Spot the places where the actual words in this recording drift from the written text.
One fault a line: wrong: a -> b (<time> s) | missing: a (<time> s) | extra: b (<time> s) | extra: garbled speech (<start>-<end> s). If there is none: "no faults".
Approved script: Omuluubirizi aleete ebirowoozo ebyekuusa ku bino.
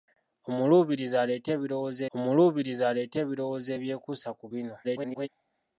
extra: omuluubirizi aleete ebirowoozo (2.2 s)
extra: garbled speech (4.8-5.3 s)